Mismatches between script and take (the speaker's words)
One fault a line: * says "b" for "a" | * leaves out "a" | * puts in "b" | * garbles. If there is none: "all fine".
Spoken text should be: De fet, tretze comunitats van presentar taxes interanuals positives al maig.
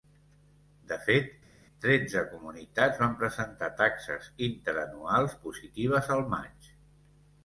all fine